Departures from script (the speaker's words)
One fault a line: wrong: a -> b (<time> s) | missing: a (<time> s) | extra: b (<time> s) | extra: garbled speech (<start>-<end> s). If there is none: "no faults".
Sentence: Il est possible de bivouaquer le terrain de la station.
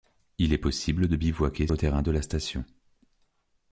no faults